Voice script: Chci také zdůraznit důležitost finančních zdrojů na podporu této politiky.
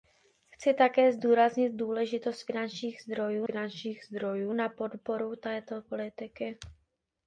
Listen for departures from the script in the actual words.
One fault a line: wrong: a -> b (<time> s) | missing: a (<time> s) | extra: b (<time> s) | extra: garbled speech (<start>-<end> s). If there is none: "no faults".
extra: finančních zdrojů (3.4 s)